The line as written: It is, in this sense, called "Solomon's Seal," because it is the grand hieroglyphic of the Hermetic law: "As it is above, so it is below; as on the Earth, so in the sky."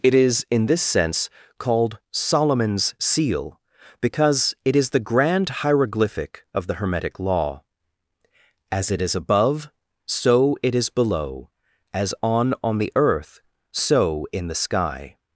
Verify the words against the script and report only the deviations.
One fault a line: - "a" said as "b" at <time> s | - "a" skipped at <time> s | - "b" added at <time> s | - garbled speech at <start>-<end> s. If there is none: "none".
- "on" added at 12.6 s